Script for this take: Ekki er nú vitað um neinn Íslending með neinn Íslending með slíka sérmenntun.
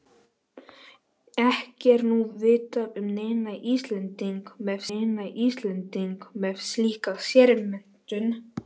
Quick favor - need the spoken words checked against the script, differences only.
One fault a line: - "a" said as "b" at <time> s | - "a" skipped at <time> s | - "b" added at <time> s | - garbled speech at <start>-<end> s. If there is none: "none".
none